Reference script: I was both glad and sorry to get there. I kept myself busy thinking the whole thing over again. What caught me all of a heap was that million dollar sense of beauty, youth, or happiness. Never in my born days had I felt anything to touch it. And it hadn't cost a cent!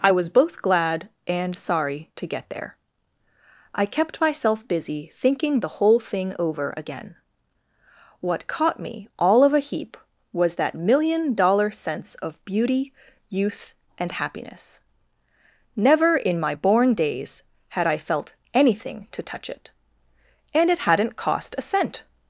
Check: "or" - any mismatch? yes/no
yes